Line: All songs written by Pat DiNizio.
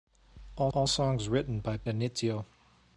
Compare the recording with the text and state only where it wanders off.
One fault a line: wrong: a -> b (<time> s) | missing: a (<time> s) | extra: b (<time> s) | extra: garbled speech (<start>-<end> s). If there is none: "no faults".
extra: all (0.7 s)
missing: Pat (1.8 s)